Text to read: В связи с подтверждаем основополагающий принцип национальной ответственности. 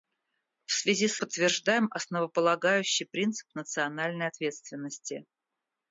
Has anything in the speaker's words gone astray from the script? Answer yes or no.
no